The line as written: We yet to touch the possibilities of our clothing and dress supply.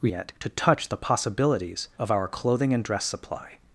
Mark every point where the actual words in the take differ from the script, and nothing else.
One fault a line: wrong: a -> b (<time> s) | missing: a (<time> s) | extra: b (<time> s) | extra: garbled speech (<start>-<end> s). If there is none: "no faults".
no faults